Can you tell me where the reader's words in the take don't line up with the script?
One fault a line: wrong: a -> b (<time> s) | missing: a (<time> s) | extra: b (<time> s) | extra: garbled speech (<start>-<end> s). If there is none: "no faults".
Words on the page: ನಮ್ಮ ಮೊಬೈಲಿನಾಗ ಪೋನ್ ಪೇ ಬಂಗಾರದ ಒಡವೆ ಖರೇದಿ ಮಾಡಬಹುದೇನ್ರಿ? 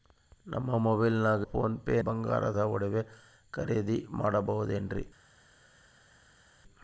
no faults